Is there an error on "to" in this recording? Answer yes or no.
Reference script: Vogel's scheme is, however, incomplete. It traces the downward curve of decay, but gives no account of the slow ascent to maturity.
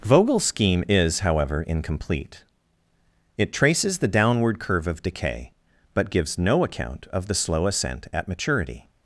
yes